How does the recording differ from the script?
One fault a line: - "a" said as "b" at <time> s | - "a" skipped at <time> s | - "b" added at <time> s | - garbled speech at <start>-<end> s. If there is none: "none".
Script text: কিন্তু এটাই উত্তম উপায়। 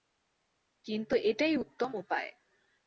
none